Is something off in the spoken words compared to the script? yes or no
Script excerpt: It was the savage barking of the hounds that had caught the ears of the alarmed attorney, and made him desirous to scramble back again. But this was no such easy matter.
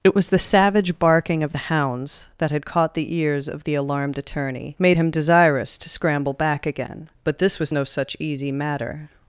yes